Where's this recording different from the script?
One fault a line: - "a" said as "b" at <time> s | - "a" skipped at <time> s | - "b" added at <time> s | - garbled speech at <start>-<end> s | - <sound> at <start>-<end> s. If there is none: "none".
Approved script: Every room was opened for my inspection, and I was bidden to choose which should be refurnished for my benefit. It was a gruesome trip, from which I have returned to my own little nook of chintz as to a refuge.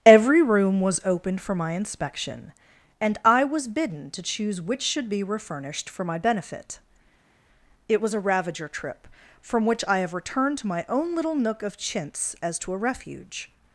- "gruesome" said as "ravager" at 8.2 s